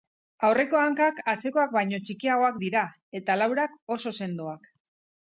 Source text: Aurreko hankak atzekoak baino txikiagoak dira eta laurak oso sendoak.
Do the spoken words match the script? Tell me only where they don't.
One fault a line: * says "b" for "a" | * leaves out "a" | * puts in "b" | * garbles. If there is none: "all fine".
all fine